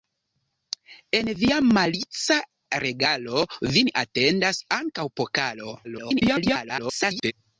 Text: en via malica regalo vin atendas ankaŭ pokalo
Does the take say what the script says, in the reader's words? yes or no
no